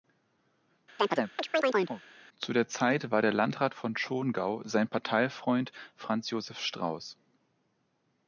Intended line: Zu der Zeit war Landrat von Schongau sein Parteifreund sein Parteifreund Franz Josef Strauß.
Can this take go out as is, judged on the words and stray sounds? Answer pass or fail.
fail